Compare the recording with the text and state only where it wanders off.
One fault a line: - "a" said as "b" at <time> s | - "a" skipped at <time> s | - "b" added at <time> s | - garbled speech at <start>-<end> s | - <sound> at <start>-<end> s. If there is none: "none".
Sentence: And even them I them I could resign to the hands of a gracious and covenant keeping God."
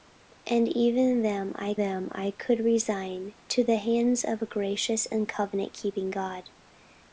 none